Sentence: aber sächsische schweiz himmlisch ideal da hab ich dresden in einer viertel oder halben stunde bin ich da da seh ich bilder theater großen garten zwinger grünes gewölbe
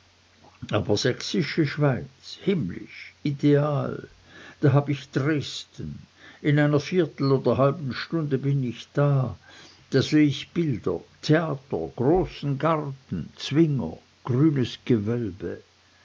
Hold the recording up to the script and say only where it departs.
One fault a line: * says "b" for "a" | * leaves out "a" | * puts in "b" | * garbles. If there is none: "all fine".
all fine